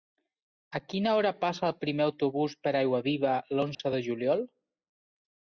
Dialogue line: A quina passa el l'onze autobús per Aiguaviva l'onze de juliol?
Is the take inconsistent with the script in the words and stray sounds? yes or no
yes